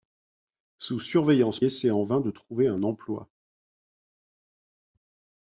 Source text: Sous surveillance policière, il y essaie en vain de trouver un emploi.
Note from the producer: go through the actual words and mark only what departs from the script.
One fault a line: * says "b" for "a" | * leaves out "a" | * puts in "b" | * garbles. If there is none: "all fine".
* leaves out "policière il y"